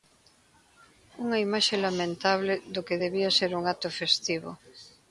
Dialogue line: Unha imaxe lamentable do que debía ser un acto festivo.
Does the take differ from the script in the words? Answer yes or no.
no